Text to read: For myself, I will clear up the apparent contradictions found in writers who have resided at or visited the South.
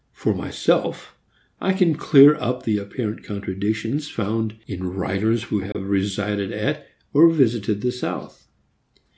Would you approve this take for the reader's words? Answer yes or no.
no